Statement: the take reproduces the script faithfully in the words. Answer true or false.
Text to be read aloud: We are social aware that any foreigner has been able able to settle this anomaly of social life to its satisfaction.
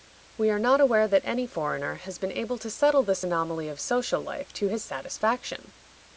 false